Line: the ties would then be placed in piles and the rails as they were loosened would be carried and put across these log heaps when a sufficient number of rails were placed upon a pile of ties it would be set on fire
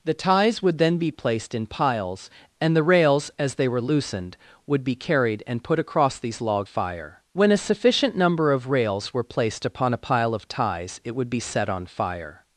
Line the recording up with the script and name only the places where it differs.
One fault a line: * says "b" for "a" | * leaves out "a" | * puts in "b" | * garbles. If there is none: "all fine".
* says "fire" for "heaps"